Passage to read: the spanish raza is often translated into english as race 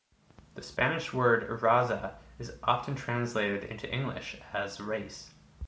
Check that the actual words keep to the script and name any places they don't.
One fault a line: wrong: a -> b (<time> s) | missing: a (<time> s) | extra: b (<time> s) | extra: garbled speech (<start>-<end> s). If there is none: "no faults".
extra: word (1.1 s)